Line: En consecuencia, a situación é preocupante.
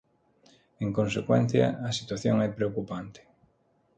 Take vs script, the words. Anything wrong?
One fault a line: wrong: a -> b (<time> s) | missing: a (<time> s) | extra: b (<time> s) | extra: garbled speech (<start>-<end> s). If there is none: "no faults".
no faults